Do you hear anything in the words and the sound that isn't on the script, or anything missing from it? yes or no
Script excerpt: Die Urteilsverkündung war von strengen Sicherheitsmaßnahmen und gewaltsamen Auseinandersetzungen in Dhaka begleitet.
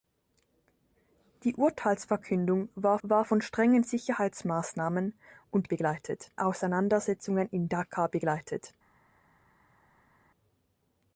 yes